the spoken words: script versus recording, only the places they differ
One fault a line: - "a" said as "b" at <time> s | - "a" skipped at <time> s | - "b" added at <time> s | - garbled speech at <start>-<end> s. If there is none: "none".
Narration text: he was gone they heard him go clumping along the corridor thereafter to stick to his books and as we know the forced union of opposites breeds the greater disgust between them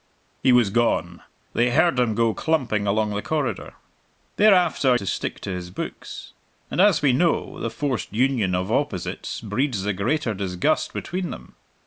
none